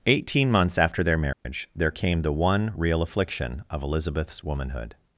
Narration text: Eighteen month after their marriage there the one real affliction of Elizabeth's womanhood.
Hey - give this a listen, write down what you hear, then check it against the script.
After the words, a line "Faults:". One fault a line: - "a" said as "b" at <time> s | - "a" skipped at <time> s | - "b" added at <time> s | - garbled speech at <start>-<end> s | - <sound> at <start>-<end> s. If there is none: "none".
Eighteen months after their marriage there came the one real affliction of Elizabeth's womanhood.
Faults:
- "month" said as "months" at 0.5 s
- dropout at 1.3-1.5 s
- "came" added at 1.9 s